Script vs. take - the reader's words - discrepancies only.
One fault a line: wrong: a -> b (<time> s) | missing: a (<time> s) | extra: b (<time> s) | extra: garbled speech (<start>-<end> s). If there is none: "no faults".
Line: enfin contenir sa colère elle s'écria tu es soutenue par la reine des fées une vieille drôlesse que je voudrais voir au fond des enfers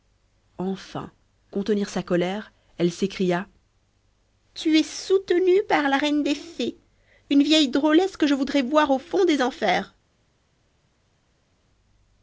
no faults